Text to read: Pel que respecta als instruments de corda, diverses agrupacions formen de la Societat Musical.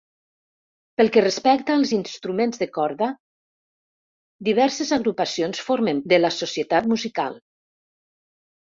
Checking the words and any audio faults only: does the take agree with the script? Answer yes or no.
yes